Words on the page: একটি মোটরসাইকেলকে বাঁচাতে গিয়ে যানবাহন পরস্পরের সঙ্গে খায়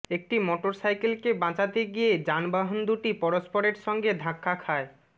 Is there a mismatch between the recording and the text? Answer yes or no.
yes